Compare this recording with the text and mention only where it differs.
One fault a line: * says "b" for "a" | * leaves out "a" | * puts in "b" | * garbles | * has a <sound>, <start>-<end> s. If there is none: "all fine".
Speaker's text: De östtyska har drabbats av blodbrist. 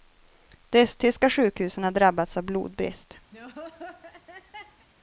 * puts in "sjukhusen"
* has a laugh, 3.3-4.9 s